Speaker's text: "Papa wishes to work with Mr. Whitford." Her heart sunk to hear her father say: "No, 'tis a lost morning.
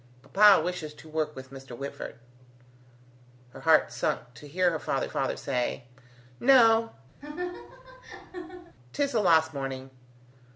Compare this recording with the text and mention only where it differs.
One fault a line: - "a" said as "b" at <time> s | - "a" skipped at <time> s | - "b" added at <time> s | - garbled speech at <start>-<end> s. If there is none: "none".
- "father" added at 5.1 s